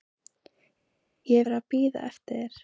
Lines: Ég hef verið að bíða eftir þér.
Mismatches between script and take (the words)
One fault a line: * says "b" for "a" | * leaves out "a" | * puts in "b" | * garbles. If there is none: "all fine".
* leaves out "hef"